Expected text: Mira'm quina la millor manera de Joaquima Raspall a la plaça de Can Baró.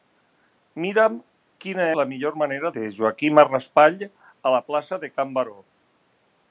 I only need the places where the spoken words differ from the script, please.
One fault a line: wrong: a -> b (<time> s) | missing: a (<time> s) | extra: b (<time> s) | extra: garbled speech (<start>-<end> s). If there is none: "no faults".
no faults